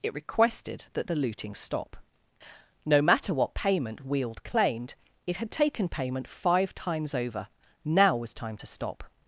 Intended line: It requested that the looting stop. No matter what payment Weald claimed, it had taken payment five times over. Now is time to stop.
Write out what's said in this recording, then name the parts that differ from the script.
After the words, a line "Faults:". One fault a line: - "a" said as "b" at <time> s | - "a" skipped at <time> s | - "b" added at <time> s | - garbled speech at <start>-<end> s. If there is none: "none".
It requested that the looting stop. No matter what payment Weald claimed, it had taken payment five times over. Now was time to stop.
Faults:
- "is" said as "was" at 8.2 s